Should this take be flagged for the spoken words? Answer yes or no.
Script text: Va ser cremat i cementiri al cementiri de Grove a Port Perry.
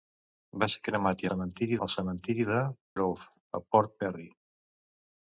no